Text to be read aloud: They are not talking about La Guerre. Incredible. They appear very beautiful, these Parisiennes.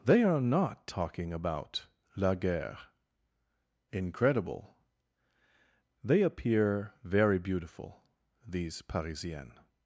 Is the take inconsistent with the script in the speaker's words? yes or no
no